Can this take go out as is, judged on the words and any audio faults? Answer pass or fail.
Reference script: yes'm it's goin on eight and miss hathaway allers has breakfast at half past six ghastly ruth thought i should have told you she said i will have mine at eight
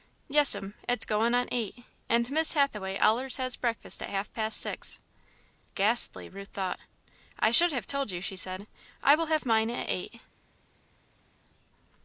pass